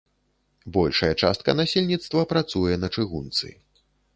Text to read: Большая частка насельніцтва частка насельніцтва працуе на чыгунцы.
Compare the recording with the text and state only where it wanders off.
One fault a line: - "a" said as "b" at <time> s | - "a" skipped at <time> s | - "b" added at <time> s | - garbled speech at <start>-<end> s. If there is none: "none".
- "частка насельніцтва" skipped at 2.2 s